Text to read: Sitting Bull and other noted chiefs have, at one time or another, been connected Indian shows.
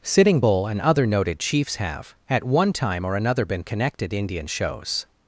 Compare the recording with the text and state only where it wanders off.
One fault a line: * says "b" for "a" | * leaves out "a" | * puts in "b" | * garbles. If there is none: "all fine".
all fine